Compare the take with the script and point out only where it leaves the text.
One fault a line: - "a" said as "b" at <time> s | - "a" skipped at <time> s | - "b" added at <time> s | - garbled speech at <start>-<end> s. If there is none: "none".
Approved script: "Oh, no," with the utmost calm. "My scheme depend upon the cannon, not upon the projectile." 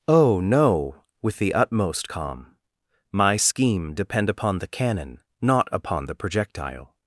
none